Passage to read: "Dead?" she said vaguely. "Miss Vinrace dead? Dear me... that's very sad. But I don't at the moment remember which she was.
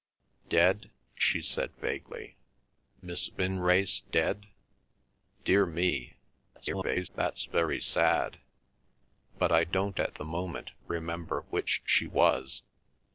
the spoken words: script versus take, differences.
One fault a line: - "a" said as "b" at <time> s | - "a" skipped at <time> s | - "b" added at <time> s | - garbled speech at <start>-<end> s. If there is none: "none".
- garbled speech at 6.6-7.1 s